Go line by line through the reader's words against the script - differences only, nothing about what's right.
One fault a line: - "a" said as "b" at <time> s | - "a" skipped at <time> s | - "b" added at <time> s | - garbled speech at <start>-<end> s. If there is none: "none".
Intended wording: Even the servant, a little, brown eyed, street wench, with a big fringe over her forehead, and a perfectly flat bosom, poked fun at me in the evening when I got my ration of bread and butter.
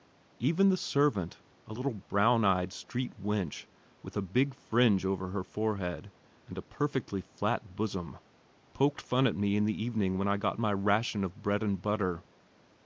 none